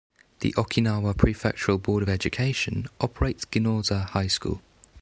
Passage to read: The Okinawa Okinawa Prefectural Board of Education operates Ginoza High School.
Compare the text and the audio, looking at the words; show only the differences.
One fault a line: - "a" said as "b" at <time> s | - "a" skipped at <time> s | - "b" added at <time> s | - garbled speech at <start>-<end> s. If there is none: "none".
- "Okinawa" skipped at 1.1 s